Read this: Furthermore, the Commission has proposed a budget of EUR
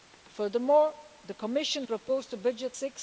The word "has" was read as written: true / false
false